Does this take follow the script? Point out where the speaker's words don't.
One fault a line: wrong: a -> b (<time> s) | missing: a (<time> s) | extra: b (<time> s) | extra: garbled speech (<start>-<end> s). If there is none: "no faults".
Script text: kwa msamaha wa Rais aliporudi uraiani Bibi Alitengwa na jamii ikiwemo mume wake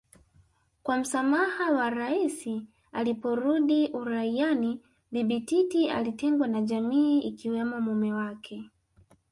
extra: Titi (5.4 s)